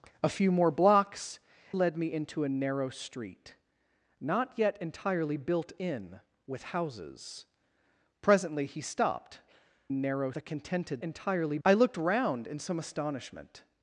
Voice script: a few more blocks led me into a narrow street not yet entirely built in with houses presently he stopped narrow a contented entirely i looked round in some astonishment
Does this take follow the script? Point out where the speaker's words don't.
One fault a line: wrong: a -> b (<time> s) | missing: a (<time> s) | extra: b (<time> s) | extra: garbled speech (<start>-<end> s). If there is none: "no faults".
no faults